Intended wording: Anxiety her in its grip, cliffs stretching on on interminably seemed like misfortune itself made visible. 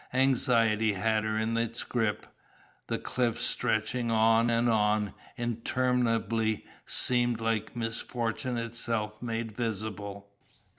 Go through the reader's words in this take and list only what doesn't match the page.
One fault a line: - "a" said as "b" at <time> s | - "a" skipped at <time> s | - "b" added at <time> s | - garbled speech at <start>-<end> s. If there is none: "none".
- "had" added at 0.9 s
- "the" added at 2.9 s
- "and" added at 4.5 s